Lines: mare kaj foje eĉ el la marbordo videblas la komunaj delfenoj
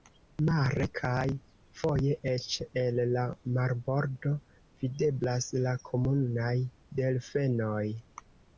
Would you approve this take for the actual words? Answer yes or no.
yes